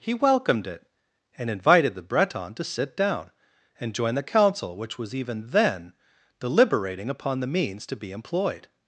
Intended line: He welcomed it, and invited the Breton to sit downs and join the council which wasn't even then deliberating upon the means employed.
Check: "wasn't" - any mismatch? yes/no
yes